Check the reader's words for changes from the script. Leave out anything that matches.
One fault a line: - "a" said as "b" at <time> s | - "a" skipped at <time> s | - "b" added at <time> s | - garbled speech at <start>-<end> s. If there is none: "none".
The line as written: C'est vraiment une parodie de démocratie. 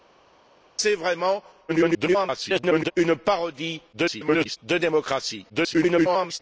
- garbled speech at 1.7-2.9 s
- garbled speech at 3.9-4.6 s
- garbled speech at 5.5-6.4 s